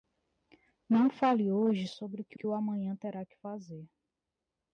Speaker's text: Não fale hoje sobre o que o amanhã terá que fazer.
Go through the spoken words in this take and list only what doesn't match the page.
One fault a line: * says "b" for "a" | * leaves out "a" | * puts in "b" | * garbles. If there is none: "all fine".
* puts in "que"